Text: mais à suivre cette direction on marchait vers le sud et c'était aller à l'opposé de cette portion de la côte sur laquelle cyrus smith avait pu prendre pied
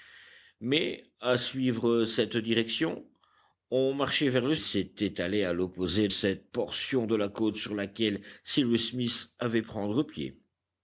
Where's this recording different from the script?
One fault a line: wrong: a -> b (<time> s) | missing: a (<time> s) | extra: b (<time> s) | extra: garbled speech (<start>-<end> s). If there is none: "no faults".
missing: sud et (4.5 s)
missing: de (6.1 s)
missing: pu (9.6 s)